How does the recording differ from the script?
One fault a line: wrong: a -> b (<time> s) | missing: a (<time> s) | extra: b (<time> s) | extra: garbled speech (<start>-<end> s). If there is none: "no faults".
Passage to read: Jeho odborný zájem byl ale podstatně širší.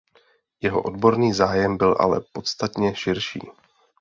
no faults